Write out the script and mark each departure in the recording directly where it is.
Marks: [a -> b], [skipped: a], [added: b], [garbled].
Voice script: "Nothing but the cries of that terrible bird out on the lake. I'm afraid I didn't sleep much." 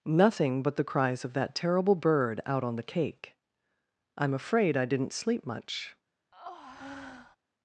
"Nothing but the cries of that terrible bird out on the [lake. -> cake] I'm afraid I didn't sleep much."